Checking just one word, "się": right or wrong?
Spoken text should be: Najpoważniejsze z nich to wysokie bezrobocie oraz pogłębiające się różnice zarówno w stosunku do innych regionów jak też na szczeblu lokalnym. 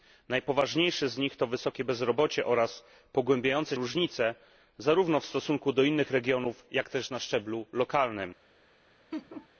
wrong